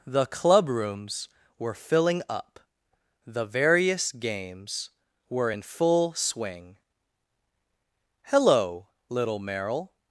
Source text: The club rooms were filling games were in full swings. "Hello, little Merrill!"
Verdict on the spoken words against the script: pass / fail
fail